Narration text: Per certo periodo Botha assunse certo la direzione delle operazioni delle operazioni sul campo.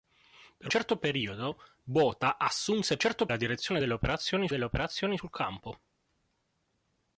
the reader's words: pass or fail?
pass